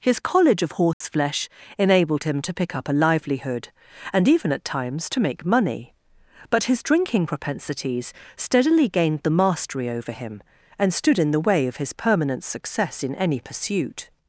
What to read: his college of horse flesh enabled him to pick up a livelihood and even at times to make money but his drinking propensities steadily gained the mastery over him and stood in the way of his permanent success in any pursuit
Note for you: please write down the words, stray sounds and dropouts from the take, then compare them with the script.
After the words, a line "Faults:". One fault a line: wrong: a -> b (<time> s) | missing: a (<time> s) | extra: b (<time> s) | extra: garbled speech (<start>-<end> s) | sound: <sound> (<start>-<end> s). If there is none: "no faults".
his college of horse flesh enabled him to pick up a livelihood and even at times to make money but his drinking propensities steadily gained the mastery over him and stood in the way of his permanent success in any pursuit
Faults:
sound: dropout (0.9-1.0 s)